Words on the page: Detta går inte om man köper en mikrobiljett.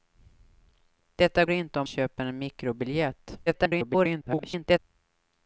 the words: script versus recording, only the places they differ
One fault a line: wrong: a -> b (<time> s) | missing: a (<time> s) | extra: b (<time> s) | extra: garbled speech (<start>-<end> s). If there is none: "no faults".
missing: går (1.4 s)
missing: man (1.9 s)
extra: garbled speech (3.5-4.8 s)